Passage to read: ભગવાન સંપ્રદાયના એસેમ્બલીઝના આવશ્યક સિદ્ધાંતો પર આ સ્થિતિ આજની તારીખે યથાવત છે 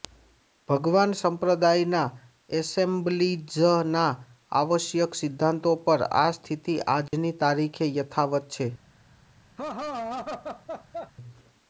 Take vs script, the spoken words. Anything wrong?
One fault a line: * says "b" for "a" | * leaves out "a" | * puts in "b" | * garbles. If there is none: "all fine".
all fine